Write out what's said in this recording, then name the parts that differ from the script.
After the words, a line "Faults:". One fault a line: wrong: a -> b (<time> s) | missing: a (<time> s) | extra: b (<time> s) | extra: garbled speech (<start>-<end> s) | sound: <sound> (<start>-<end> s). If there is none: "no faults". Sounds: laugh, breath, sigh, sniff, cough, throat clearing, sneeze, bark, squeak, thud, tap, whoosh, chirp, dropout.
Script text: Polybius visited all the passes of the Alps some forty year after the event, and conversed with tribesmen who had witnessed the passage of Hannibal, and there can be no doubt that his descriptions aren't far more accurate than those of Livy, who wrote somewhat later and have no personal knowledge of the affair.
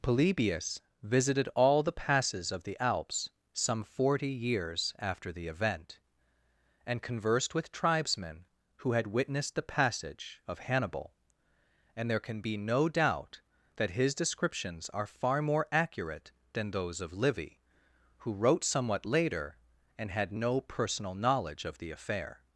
Polybius visited all the passes of the Alps some forty years after the event, and conversed with tribesmen who had witnessed the passage of Hannibal, and there can be no doubt that his descriptions are far more accurate than those of Livy, who wrote somewhat later and had no personal knowledge of the affair.
Faults:
wrong: year -> years (4.3 s)
wrong: aren't -> are (14.9 s)
wrong: have -> had (20.1 s)